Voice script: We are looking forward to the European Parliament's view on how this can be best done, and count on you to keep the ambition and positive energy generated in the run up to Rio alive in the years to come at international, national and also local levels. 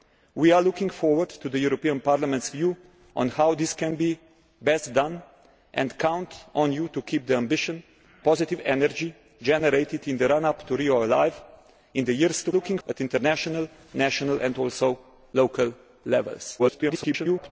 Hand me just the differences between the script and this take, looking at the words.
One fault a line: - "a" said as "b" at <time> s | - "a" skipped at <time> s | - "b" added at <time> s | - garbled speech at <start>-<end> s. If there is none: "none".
- "and" skipped at 7.8 s
- "come" said as "looking" at 12.5 s
- garbled speech at 16.6-17.5 s